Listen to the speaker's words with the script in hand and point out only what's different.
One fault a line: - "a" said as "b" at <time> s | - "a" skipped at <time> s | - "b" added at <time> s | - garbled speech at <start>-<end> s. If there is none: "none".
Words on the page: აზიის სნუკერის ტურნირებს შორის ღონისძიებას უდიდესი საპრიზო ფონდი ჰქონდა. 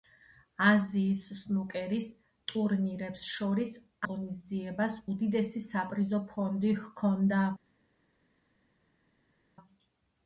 none